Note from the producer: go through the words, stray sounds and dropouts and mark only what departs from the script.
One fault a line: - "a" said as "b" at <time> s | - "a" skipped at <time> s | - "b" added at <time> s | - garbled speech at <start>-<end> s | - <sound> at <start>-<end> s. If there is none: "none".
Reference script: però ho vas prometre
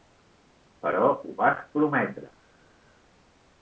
none